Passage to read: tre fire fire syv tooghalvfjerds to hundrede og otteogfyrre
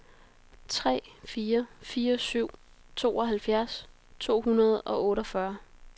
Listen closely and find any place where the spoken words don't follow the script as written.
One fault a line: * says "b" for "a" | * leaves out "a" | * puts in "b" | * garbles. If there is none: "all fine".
all fine